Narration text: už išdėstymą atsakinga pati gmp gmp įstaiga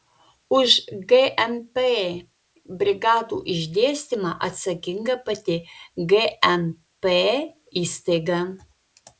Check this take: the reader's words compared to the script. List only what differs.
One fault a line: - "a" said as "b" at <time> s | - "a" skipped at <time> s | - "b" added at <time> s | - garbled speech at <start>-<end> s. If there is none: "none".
- "gmp brigadų" added at 1.1 s
- "gmp" skipped at 7.1 s